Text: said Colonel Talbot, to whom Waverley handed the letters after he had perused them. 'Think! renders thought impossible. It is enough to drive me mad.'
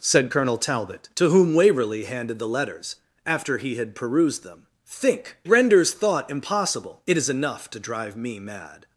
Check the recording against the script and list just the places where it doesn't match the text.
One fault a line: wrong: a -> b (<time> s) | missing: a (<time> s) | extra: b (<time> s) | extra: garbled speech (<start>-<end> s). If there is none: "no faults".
no faults